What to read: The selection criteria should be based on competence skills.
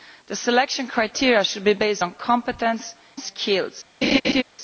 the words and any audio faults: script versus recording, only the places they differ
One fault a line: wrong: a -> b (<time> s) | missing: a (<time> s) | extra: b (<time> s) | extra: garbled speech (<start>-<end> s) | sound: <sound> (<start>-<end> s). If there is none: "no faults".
sound: laugh (4.0-4.4 s)